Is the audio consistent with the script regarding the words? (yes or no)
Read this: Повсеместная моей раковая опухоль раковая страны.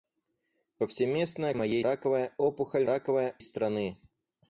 yes